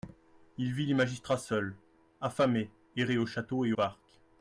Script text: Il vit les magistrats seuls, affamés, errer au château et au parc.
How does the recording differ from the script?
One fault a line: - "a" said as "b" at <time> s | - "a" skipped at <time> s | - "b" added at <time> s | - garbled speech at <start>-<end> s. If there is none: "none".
- "au" skipped at 3.7 s